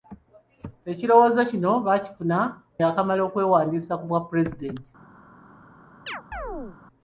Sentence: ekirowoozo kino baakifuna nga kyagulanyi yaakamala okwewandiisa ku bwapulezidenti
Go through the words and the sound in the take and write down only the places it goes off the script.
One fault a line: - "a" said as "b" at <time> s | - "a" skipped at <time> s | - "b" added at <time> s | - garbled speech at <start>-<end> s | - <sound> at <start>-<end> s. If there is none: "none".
- "nga kyagulanyi" skipped at 2.4 s
- chirp at 6.1-6.8 s